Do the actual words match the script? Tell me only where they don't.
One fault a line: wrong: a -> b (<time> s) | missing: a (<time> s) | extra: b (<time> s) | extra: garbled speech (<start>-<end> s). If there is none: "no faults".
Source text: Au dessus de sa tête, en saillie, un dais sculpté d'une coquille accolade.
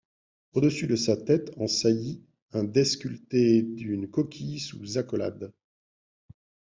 extra: sous (4.6 s)